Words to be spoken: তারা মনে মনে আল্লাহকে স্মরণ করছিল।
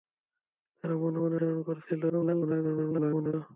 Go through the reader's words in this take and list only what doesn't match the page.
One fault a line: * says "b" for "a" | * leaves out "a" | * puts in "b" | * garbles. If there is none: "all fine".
* leaves out "আল্লাহকে"
* garbles